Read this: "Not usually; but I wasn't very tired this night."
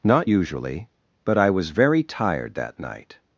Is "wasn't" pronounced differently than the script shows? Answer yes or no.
yes